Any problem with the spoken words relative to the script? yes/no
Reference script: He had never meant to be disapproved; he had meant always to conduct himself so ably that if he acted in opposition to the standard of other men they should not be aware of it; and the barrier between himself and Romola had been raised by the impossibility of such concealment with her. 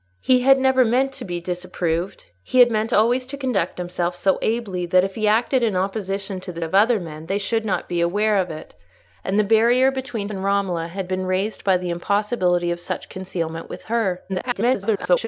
yes